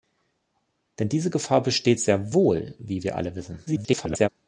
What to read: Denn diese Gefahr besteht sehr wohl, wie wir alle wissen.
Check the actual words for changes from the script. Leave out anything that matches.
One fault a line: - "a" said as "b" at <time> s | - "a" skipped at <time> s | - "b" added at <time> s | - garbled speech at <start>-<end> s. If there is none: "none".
- garbled speech at 3.7-4.3 s